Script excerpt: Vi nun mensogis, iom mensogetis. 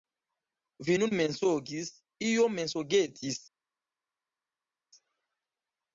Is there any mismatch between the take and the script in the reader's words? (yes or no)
no